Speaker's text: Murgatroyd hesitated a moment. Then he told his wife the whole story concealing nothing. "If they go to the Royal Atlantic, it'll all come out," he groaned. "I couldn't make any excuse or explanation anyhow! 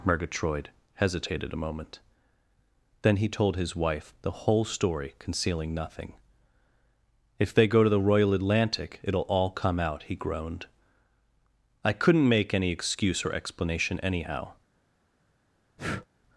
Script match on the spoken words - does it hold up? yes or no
yes